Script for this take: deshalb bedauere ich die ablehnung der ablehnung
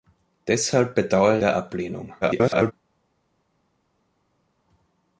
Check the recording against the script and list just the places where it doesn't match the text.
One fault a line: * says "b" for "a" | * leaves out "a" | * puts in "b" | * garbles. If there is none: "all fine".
* leaves out "ich die ablehnung"
* garbles